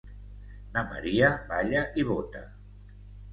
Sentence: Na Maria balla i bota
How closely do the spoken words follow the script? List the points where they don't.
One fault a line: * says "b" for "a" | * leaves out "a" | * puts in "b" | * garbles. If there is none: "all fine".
all fine